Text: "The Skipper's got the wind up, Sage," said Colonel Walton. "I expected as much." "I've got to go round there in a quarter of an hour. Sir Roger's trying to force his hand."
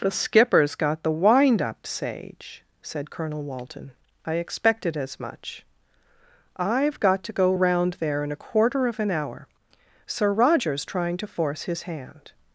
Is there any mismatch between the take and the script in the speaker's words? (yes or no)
no